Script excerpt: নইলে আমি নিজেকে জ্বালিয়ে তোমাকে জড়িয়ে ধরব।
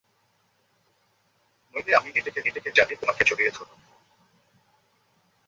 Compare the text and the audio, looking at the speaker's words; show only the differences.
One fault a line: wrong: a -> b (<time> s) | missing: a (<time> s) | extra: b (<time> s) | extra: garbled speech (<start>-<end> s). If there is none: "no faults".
extra: নিজেকে (2.4 s)